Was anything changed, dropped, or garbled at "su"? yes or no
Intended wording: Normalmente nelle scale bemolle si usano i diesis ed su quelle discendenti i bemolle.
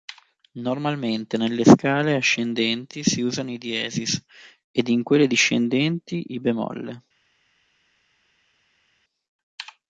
yes